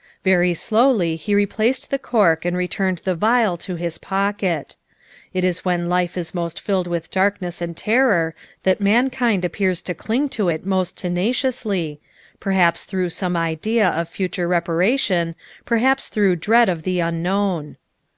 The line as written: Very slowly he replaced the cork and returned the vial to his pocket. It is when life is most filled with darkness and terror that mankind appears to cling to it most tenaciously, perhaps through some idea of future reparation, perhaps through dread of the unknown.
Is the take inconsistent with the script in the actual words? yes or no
no